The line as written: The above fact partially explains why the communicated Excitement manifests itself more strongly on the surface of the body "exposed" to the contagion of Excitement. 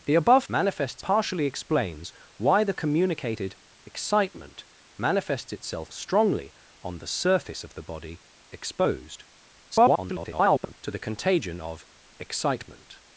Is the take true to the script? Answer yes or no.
no